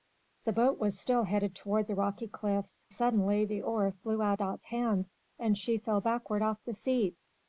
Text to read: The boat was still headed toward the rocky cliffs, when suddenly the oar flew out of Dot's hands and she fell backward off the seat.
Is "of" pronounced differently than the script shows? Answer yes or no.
yes